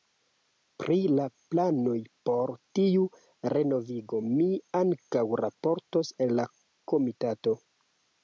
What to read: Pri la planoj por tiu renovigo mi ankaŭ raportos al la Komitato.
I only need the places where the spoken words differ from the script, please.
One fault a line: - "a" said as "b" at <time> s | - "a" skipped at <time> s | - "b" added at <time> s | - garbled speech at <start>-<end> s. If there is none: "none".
none